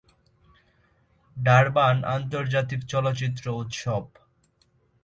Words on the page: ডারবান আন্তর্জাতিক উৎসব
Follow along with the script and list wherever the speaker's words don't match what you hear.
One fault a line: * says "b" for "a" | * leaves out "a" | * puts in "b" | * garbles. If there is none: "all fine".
* puts in "চলচ্চিত্র"